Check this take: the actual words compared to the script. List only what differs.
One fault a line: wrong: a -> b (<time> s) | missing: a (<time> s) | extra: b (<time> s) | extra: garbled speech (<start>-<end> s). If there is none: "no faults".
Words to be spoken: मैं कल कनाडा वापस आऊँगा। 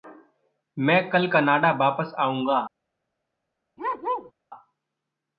no faults